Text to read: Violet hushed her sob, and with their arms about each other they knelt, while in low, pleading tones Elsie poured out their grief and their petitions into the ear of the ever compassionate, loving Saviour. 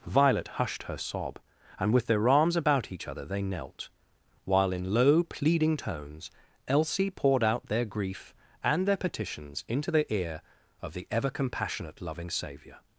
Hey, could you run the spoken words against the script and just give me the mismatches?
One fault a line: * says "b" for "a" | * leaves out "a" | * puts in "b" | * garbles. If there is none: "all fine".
all fine